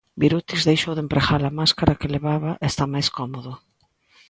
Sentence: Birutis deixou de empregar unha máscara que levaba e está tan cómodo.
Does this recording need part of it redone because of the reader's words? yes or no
yes